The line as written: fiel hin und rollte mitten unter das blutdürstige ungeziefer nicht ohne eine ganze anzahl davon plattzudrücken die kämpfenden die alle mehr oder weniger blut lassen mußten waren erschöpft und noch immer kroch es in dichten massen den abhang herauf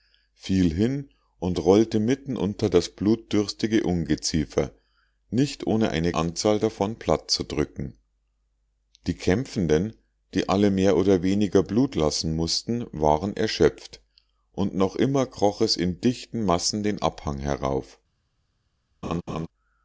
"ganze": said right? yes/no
no